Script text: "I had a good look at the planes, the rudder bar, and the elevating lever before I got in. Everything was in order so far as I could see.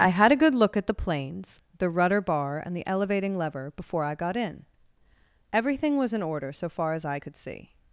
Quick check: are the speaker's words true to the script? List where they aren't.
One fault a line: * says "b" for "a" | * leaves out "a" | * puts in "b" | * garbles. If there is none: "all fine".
all fine